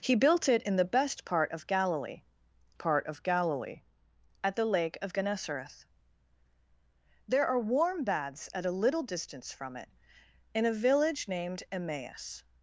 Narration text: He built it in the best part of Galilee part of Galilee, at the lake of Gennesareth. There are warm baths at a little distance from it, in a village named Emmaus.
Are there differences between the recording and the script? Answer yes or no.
no